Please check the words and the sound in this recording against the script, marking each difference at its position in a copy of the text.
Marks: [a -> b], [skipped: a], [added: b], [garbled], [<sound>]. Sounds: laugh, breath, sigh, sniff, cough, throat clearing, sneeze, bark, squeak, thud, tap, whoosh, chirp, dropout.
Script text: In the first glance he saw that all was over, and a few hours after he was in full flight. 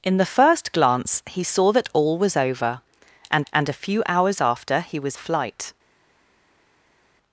In the first glance he saw that all was over, and [added: and] a few hours after he was [skipped: in full] flight.